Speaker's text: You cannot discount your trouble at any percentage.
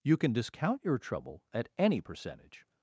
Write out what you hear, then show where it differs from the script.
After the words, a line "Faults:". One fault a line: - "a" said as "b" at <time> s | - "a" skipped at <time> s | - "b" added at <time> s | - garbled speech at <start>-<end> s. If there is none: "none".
You can discount your trouble at any percentage.
Faults:
- "cannot" said as "can" at 0.2 s